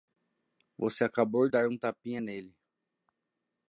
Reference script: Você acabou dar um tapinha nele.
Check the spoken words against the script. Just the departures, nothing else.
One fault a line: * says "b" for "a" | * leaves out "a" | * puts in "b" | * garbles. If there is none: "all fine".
all fine